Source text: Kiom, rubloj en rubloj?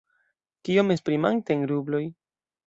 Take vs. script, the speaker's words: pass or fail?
fail